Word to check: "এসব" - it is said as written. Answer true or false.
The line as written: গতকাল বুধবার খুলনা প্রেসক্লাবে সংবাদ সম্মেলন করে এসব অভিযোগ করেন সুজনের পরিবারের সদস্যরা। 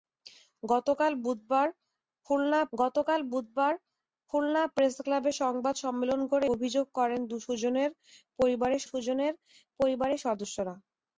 false